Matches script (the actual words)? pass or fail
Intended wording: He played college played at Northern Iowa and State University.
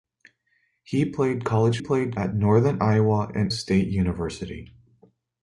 pass